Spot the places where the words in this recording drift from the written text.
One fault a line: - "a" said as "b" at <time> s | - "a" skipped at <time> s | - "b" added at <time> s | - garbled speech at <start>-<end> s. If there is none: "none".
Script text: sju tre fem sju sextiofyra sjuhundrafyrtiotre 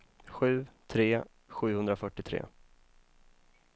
- "fem sju sextiofyra" skipped at 1.2 s